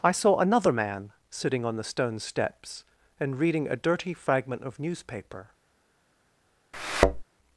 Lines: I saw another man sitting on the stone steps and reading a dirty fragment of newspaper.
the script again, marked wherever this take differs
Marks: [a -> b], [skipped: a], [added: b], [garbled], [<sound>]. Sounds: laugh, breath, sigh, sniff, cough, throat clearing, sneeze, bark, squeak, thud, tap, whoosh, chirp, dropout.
I saw another man sitting on the stone steps and reading a dirty fragment of newspaper. [thud]